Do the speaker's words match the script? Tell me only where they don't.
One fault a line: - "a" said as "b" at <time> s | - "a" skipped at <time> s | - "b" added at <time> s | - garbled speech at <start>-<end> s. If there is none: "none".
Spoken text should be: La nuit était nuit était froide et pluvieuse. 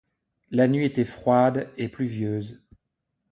- "nuit était" skipped at 1.1 s